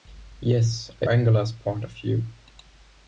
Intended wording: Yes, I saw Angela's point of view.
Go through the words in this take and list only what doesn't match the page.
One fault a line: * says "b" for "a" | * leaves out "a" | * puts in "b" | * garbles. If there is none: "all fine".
* leaves out "saw"